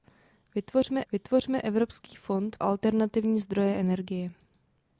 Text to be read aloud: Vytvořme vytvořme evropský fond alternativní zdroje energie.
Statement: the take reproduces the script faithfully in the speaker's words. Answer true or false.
true